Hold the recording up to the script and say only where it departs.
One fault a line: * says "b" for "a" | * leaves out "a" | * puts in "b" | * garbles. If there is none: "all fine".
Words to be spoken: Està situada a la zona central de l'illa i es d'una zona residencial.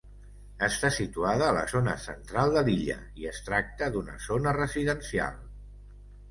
* puts in "tracta"